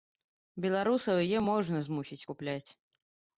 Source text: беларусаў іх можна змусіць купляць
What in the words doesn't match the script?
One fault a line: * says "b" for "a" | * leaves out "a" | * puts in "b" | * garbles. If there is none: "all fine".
* says "яе" for "іх"